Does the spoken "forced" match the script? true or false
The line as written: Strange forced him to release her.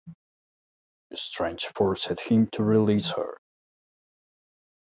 true